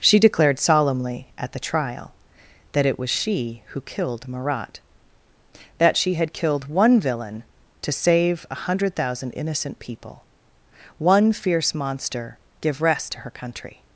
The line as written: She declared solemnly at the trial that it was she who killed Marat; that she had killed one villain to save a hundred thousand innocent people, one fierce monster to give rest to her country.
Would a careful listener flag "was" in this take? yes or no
no